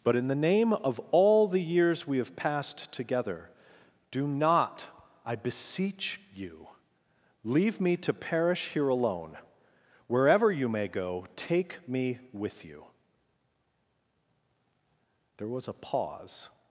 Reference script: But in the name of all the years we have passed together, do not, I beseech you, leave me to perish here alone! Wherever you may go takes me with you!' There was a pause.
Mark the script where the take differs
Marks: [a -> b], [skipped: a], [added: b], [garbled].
But in the name of all the years we have passed together, do not, I beseech you, leave me to perish here alone! Wherever you may go [takes -> take] me with you!' There was a pause.